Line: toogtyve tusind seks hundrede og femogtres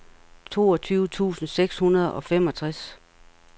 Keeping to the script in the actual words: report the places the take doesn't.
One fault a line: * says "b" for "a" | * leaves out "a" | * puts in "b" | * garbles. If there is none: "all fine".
all fine